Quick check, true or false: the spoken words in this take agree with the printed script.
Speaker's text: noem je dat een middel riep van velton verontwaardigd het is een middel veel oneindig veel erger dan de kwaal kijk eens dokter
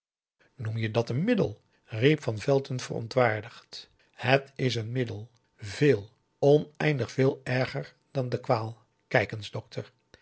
true